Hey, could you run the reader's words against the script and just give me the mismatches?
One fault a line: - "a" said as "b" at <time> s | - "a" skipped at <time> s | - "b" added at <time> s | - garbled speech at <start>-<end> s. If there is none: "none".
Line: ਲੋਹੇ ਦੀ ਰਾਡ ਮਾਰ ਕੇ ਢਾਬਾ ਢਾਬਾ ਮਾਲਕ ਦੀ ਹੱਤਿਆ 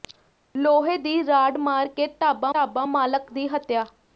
none